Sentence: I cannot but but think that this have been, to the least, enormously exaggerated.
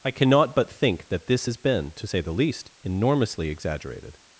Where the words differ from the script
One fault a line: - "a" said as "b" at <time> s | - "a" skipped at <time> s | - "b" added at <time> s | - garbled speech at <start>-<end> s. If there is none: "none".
- "but" skipped at 0.7 s
- "have" said as "has" at 1.4 s
- "say" added at 2.0 s